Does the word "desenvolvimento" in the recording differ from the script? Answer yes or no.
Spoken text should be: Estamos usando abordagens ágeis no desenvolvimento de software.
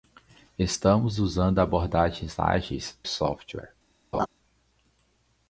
yes